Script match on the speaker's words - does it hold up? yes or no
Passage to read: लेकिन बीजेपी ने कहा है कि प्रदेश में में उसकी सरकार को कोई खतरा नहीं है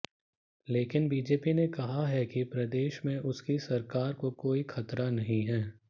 no